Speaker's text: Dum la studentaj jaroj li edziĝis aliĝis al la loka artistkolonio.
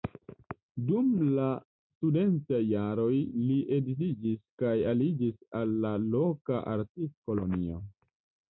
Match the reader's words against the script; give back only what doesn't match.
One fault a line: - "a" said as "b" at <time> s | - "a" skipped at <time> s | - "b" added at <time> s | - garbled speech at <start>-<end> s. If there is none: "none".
- "kaj" added at 4.6 s